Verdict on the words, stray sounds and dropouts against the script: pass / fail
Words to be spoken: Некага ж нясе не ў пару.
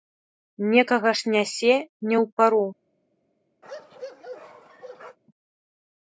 fail